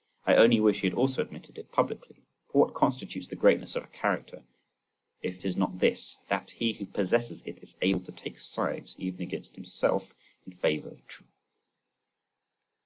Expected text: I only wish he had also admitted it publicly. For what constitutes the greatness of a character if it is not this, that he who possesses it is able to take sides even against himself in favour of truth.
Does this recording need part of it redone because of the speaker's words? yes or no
no